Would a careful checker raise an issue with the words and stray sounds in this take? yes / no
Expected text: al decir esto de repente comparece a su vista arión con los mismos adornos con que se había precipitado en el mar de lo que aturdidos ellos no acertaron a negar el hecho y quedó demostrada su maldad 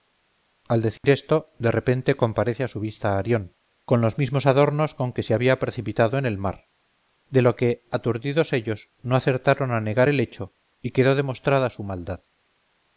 yes